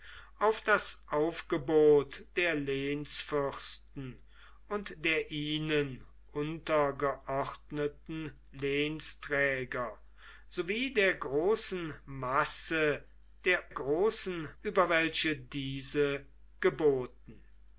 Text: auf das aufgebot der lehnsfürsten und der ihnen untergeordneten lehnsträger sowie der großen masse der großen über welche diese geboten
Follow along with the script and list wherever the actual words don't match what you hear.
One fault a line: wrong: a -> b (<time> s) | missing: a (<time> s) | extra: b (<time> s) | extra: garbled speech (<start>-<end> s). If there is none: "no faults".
no faults